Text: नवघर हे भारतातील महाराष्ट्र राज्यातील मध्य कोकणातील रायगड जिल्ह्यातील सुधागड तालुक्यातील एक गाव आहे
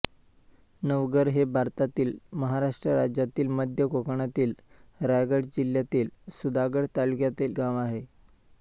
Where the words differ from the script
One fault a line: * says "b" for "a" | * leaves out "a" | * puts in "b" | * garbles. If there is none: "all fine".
* leaves out "एक"